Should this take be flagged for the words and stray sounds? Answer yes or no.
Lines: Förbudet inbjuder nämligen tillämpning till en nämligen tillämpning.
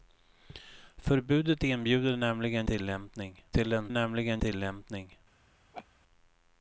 yes